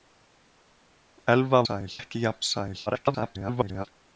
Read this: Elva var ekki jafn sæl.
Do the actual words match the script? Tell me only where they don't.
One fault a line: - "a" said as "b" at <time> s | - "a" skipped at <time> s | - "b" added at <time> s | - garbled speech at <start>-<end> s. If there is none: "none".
- "var" said as "sæl" at 1.6 s
- garbled speech at 2.9-3.9 s